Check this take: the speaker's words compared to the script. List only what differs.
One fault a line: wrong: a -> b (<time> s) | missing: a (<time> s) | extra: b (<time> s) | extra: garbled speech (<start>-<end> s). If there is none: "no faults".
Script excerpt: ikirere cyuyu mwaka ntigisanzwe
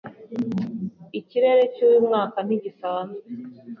no faults